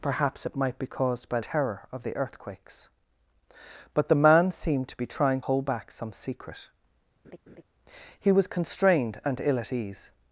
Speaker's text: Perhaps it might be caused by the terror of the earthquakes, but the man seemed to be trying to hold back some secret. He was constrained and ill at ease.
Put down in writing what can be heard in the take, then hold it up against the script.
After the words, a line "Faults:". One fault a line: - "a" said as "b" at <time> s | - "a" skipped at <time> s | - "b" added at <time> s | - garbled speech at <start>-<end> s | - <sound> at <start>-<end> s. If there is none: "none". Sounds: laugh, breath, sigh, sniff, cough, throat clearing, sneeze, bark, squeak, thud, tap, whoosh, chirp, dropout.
Perhaps it might be caused by terror of the earthquakes, but the man seemed to be trying hold back some secret. He was constrained and ill at ease.
Faults:
- "the" skipped at 1.4 s
- "to" skipped at 5.4 s
- laugh at 7.2-7.6 s